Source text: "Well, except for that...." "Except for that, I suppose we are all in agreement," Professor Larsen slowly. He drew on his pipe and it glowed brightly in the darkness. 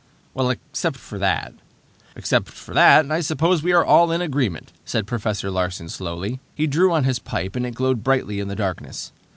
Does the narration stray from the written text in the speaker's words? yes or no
yes